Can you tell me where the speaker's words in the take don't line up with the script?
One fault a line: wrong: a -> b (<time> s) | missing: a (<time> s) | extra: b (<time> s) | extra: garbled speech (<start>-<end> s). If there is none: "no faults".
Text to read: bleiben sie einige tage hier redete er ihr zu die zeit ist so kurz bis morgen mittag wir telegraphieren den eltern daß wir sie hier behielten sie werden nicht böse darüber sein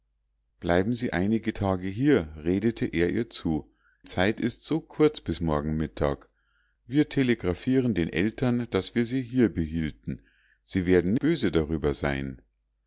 missing: die (3.7 s)
missing: nicht (11.1 s)